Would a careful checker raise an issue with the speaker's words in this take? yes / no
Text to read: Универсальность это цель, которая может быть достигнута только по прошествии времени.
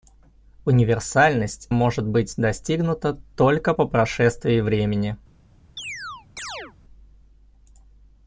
yes